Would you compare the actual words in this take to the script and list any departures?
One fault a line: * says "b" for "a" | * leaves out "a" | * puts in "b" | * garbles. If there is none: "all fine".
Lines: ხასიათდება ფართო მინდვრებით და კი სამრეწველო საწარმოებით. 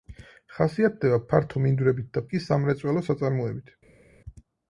all fine